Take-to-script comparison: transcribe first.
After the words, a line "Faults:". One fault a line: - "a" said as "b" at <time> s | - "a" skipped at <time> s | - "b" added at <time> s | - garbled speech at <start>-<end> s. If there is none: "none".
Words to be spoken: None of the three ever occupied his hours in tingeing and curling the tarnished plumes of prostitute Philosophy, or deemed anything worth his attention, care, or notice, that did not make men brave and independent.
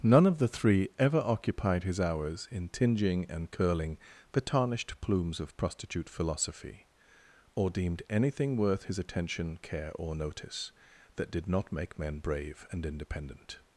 None of the three ever occupied his hours in tingeing and curling the tarnished plumes of prostitute Philosophy, or deemed anything worth his attention, care, or notice, that did not make men brave and independent.
Faults:
none